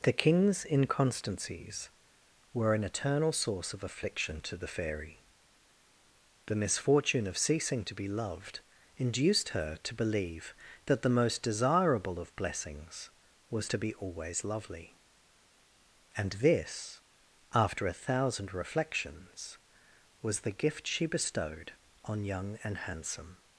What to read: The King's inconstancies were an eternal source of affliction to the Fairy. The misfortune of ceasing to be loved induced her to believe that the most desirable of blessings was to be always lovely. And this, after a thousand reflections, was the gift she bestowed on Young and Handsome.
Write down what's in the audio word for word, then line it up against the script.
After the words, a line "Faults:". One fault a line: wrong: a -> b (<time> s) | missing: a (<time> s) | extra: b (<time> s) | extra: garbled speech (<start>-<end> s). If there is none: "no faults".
The King's inconstancies were an eternal source of affliction to the Fairy. The misfortune of ceasing to be loved induced her to believe that the most desirable of blessings was to be always lovely. And this, after a thousand reflections, was the gift she bestowed on Young and Handsome.
Faults:
no faults